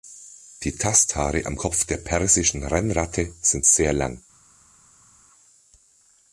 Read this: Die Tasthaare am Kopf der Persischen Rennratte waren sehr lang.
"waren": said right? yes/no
no